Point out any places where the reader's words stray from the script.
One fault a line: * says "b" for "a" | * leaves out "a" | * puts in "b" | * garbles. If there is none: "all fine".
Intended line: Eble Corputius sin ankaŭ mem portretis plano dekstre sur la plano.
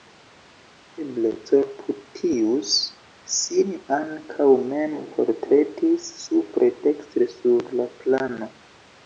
* says "supre" for "plano"